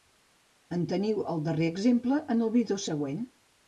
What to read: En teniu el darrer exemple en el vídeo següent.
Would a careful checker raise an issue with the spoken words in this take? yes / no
no